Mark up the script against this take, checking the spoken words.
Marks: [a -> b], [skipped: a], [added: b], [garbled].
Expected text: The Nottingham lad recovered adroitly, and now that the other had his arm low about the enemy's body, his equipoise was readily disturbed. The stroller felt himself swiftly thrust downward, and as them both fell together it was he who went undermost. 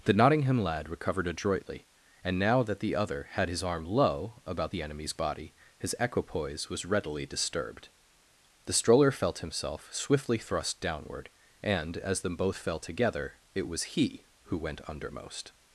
The Nottingham lad recovered adroitly, and now that the other had his arm low about the enemy's body, his equipoise was readily disturbed. The stroller felt himself swiftly thrust downward, and as them both fell together it was he who went undermost.